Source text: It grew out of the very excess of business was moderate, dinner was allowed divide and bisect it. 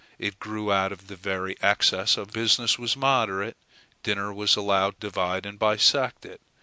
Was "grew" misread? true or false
false